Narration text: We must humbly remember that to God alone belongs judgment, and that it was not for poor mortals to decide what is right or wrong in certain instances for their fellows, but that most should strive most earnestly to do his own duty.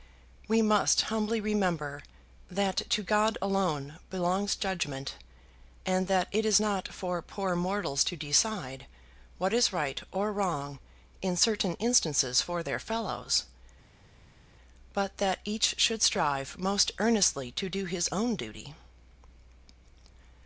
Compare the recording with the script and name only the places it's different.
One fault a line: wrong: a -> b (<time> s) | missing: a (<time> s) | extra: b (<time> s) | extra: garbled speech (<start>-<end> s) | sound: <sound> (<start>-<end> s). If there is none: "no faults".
wrong: was -> is (6.4 s)
wrong: most -> each (15.4 s)